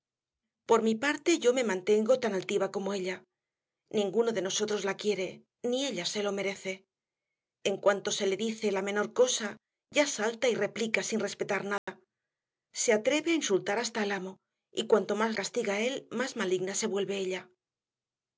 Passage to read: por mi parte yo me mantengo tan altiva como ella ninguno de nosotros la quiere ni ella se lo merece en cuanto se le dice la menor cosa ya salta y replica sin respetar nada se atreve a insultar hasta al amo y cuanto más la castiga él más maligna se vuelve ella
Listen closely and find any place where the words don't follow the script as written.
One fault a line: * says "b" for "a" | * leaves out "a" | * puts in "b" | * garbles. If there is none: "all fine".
* leaves out "la"